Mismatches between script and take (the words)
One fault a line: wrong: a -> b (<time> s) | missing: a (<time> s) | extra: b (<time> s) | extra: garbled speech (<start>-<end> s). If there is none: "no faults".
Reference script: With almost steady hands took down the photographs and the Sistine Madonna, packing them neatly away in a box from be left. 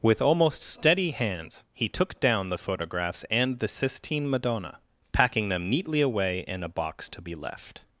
extra: he (1.7 s)
wrong: from -> to (7.1 s)